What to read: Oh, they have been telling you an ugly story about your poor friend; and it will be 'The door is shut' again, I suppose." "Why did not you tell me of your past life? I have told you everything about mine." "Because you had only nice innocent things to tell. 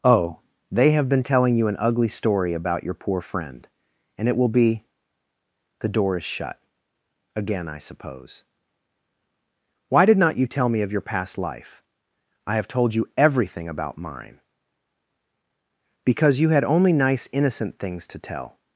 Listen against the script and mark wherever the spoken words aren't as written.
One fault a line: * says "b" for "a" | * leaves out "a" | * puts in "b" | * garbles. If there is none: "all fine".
all fine